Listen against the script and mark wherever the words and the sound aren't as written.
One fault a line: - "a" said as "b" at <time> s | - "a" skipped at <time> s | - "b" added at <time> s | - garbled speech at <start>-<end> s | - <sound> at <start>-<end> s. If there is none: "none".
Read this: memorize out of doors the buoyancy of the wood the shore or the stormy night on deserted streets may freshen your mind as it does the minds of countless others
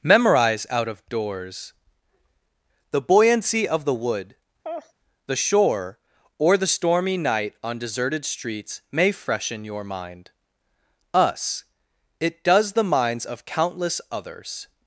- laugh at 4.6-4.9 s
- "as" said as "us" at 11.1 s